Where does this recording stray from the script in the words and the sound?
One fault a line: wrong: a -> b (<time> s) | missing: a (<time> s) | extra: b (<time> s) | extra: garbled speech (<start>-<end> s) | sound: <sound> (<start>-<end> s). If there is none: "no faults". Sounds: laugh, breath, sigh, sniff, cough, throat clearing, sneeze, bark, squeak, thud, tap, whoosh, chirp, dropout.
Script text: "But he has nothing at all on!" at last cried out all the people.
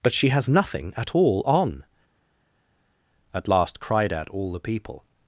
wrong: he -> she (0.1 s)